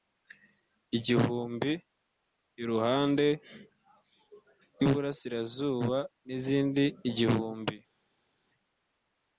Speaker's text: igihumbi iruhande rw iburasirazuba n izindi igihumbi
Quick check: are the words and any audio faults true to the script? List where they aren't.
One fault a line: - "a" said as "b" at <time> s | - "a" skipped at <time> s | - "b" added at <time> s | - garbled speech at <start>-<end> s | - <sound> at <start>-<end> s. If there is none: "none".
none